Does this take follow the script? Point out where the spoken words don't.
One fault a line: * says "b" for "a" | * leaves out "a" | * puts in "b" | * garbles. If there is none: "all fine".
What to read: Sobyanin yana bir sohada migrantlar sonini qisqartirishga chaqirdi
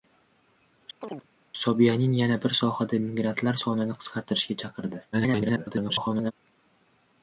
* garbles